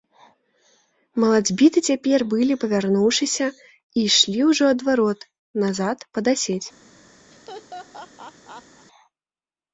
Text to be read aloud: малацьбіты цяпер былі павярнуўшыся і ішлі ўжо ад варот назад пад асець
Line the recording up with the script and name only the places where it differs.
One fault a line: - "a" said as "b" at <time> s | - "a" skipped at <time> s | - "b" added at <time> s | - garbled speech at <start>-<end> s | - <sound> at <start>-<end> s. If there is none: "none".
- laugh at 7.3-8.9 s